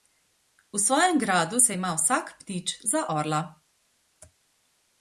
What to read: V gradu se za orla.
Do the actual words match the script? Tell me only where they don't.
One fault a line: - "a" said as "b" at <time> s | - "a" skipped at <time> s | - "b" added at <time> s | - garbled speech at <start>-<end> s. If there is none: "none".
- "svojem" added at 0.8 s
- "ima vsak ptič" added at 1.7 s